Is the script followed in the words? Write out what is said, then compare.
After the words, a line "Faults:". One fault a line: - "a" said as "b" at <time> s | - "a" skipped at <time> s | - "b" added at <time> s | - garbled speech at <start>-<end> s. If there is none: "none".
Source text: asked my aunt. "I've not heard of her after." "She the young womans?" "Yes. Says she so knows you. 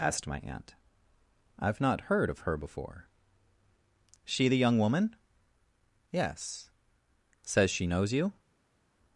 asked my aunt. "I've not heard of her before." "She the young woman?" "Yes. Says she knows you.
Faults:
- "after" said as "before" at 2.5 s
- "womans" said as "woman" at 4.8 s
- "so" skipped at 7.9 s